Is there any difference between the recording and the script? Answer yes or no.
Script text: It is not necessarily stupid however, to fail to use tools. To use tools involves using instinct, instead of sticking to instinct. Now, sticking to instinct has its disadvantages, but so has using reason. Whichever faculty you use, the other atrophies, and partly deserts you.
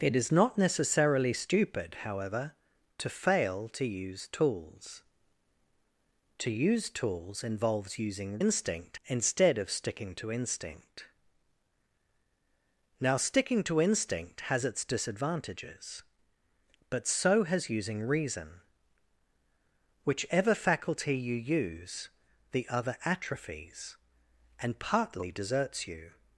no